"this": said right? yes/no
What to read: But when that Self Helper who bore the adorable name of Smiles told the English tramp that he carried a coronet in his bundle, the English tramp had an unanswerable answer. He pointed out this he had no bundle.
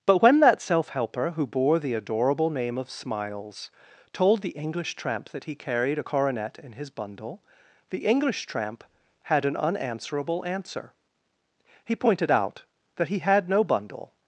no